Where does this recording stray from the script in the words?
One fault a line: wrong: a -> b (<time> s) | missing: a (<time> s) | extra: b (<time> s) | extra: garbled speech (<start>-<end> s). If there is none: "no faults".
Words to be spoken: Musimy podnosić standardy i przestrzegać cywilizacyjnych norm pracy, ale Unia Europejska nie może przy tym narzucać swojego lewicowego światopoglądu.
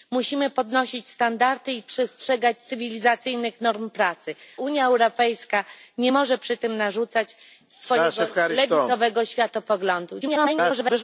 missing: ale (4.3 s)
extra: garbled speech (10.2-11.0 s)